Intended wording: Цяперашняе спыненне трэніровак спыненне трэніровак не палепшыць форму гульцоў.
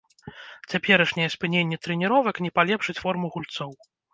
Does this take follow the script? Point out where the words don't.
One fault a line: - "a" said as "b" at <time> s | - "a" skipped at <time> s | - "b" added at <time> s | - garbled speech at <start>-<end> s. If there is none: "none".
- "спыненне трэніровак" skipped at 2.4 s